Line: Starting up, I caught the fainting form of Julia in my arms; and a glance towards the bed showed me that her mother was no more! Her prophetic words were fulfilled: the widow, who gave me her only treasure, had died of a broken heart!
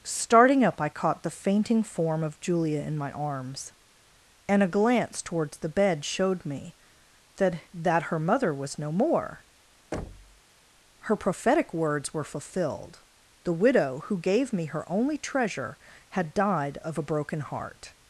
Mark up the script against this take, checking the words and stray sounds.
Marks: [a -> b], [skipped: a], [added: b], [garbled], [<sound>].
Starting up, I caught the fainting form of Julia in my arms; and a glance towards the bed showed me that [added: that] her mother was no more! [thud] Her prophetic words were fulfilled: the widow, who gave me her only treasure, had died of a broken heart!